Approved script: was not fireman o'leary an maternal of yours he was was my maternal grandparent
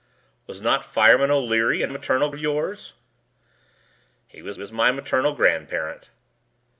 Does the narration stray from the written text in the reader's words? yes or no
no